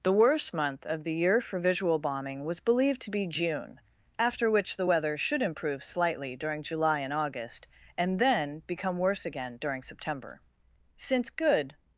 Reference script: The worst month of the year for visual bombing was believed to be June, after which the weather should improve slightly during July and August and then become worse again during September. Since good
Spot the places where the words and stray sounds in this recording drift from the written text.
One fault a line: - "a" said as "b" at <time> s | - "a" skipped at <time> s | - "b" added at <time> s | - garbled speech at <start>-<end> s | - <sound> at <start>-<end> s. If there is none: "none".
none